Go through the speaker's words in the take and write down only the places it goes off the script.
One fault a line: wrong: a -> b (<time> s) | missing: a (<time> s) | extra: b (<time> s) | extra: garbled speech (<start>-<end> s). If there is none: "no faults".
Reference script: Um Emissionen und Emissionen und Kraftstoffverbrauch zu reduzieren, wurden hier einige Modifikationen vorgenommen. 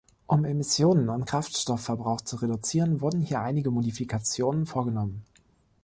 missing: Emissionen und (1.3 s)